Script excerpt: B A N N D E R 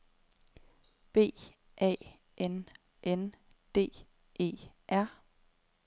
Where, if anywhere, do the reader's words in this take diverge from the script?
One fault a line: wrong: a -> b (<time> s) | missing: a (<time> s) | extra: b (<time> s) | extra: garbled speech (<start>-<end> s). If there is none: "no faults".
no faults